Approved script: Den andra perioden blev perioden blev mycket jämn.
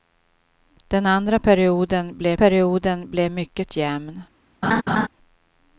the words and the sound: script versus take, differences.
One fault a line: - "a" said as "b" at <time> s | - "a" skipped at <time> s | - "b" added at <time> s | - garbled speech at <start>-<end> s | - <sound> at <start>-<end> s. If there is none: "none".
- laugh at 4.6-5.1 s